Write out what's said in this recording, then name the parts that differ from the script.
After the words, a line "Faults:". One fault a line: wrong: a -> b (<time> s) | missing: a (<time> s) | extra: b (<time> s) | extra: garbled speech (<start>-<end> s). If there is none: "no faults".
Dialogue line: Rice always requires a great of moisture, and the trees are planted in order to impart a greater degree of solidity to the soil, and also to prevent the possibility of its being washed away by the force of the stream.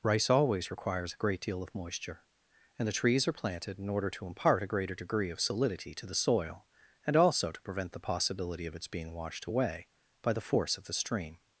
Rice always requires a great deal of moisture, and the trees are planted in order to impart a greater degree of solidity to the soil, and also to prevent the possibility of its being washed away by the force of the stream.
Faults:
extra: deal (1.4 s)